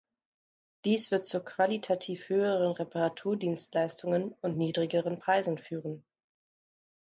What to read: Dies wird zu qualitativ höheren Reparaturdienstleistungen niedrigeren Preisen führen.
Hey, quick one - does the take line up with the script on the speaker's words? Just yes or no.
no